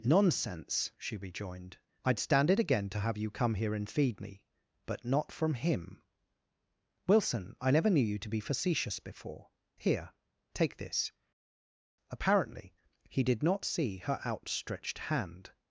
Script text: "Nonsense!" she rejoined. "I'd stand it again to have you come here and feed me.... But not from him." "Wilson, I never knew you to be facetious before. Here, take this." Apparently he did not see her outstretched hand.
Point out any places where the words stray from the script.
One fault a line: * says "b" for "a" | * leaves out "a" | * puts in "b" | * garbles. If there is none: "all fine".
all fine